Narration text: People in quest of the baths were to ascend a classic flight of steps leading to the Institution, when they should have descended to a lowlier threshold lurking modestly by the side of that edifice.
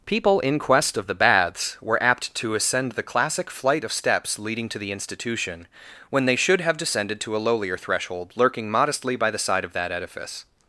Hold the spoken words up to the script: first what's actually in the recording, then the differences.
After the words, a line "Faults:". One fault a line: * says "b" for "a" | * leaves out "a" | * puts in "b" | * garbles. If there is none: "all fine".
People in quest of the baths were apt to ascend the classic flight of steps leading to the Institution, when they should have descended to a lowlier threshold lurking modestly by the side of that edifice.
Faults:
* puts in "apt"
* says "the" for "a"